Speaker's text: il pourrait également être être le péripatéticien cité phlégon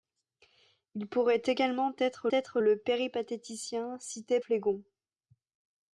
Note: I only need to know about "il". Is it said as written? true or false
true